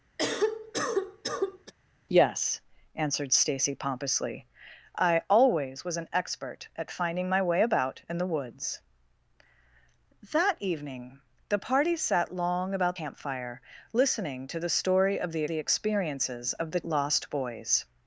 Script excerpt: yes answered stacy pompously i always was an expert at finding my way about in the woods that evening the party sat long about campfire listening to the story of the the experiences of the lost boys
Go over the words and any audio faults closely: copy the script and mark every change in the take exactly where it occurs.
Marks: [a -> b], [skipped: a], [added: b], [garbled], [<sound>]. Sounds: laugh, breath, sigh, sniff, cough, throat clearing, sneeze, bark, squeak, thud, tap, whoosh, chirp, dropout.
[cough] yes answered stacy pompously i always was an expert at finding my way about in the woods that evening the party sat long about campfire listening to the story of the the experiences of the lost boys